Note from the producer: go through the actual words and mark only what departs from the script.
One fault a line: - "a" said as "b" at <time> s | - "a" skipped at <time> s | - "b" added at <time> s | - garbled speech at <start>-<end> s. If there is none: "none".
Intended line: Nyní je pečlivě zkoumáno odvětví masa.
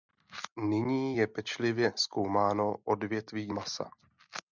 none